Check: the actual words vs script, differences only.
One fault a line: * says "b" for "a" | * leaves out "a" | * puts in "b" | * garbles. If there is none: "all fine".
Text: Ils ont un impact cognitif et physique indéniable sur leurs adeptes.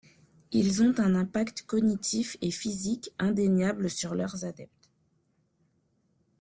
all fine